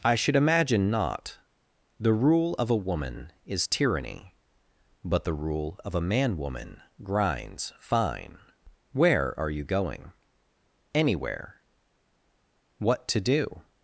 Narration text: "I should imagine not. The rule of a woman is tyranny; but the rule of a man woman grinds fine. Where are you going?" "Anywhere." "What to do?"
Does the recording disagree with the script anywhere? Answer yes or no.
no